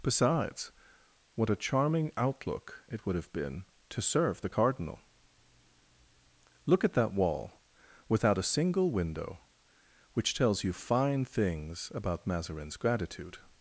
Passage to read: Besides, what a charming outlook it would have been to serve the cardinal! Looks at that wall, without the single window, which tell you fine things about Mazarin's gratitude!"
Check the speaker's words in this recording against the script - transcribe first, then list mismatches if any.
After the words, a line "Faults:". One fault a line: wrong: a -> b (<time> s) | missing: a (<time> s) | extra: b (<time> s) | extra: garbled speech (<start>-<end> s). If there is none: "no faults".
Besides, what a charming outlook it would have been to serve the cardinal! Look at that wall, without a single window, which tells you fine things about Mazarin's gratitude!"
Faults:
wrong: Looks -> Look (6.7 s)
wrong: the -> a (8.4 s)
wrong: tell -> tells (10.3 s)